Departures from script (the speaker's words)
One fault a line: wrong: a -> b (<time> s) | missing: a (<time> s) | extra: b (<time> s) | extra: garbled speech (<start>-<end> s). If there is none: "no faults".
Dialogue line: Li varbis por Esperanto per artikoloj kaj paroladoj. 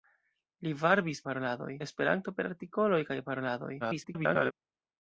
wrong: por -> paroladoj (1.3 s)
extra: garbled speech (3.8-4.5 s)